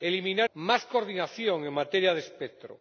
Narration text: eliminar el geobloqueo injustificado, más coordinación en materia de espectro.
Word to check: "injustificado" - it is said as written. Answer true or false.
false